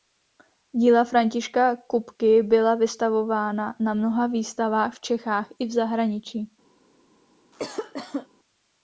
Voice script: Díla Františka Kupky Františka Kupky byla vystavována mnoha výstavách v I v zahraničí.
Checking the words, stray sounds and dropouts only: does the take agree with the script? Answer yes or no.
no